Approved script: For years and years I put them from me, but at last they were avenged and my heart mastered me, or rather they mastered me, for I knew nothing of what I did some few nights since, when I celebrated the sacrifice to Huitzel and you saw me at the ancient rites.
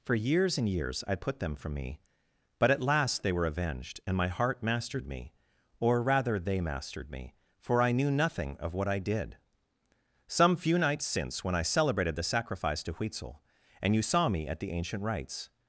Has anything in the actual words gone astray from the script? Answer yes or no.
no